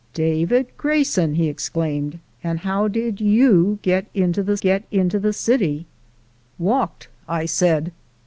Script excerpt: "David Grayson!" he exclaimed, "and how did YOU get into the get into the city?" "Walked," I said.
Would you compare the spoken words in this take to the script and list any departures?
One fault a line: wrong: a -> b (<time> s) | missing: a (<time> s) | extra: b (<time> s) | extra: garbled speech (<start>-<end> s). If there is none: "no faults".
no faults